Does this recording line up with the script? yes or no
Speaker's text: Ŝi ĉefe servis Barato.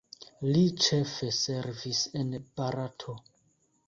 no